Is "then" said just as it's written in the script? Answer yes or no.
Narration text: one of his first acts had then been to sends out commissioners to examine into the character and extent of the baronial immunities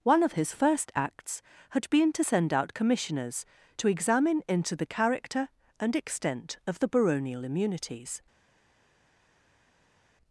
no